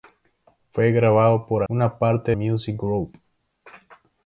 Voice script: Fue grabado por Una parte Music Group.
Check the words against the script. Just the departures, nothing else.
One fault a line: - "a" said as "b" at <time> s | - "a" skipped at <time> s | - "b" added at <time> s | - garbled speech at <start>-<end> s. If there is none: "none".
none